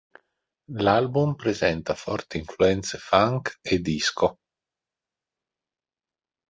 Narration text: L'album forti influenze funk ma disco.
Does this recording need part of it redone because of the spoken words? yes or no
yes